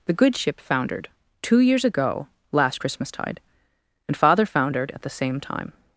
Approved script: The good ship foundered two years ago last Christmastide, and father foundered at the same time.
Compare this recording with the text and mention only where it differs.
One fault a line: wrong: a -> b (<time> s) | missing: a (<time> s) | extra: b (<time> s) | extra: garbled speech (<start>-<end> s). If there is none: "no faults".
no faults